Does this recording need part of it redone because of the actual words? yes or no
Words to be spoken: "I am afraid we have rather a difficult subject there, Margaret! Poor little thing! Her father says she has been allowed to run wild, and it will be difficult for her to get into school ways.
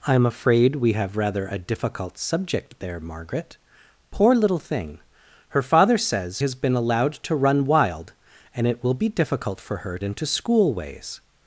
yes